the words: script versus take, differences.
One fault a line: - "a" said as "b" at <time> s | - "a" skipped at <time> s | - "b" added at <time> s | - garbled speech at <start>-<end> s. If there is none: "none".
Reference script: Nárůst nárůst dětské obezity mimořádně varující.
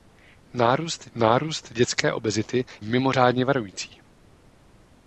none